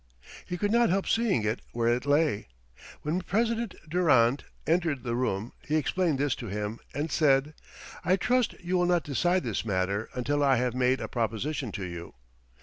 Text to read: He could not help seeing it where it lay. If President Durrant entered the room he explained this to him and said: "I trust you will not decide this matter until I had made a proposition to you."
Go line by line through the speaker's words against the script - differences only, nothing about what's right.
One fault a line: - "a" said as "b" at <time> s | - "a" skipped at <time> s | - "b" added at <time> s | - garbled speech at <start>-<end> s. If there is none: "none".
- "If" said as "When" at 3.0 s
- "had" said as "have" at 10.6 s